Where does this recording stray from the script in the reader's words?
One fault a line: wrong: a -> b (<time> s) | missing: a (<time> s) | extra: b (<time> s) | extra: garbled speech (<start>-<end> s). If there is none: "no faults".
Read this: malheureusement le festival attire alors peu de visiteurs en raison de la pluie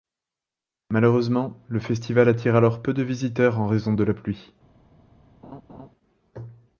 no faults